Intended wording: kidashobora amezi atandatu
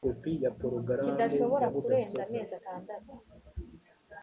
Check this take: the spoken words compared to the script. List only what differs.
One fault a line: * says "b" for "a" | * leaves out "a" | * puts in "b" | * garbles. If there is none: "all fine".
* puts in "kurenza"